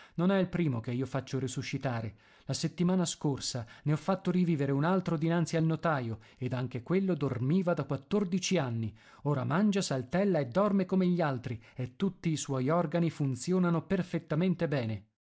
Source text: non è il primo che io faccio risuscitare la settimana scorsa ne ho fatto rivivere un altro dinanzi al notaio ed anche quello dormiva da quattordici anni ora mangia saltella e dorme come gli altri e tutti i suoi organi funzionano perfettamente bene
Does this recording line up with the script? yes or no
yes